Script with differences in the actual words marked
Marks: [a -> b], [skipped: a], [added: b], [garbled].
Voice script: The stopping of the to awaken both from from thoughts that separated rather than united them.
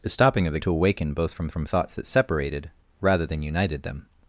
The stopping of the to awaken both from from thoughts that separated rather than united them.